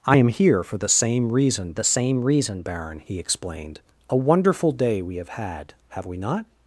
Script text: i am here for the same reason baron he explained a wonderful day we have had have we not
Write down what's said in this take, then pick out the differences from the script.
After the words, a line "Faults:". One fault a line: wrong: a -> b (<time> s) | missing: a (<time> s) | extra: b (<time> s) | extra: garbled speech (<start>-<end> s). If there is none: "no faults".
i am here for the same reason the same reason baron he explained a wonderful day we have had have we not
Faults:
extra: the same reason (1.7 s)